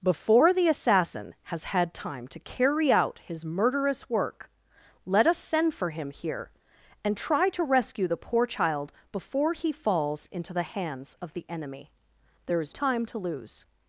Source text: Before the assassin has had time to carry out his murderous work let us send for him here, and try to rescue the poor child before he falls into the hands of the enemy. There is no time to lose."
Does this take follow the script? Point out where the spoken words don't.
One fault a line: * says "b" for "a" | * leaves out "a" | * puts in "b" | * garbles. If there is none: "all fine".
* leaves out "no"